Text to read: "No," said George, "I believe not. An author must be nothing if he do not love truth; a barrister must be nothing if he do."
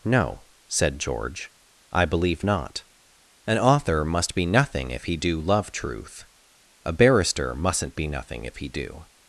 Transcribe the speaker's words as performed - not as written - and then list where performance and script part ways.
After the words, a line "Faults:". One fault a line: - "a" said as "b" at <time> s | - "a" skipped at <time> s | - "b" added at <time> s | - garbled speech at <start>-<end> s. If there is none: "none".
"No," said George, "I believe not. An author must be nothing if he do love truth; a barrister mustn't be nothing if he do."
Faults:
- "not" skipped at 5.4 s
- "must" said as "mustn't" at 7.6 s